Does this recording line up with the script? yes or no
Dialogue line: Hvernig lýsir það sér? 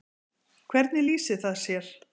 yes